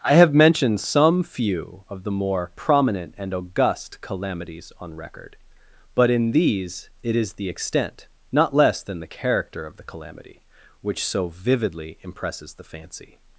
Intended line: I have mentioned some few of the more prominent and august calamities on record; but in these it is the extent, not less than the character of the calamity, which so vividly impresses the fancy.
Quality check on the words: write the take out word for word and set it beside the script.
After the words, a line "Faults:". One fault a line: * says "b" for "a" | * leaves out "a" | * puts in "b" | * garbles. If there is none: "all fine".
I have mentioned some few of the more prominent and august calamities on record; but in these it is the extent, not less than the character of the calamity, which so vividly impresses the fancy.
Faults:
all fine